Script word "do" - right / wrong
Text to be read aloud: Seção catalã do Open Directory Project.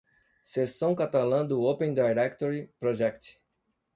right